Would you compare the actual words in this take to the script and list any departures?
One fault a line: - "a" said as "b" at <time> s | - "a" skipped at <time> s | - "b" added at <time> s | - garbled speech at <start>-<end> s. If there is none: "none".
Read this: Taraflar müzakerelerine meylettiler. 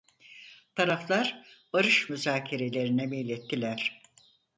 - "barış" added at 1.7 s